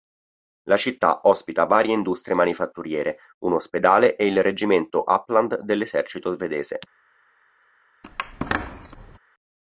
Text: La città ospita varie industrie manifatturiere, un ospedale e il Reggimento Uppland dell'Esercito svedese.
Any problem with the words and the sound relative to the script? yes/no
yes